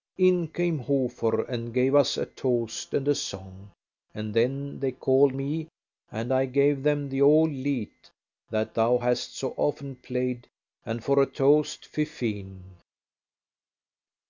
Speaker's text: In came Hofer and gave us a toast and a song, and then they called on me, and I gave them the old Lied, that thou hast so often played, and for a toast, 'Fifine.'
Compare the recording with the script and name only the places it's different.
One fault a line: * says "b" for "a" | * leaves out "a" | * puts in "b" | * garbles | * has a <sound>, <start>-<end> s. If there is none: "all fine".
* leaves out "on"